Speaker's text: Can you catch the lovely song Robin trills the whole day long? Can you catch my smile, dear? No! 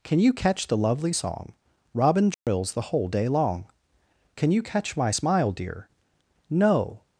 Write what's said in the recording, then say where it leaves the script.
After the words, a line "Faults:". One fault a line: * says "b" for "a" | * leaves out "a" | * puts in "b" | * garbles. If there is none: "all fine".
Can you catch the lovely song Robin trills the whole day long? Can you catch my smile, dear? No!
Faults:
all fine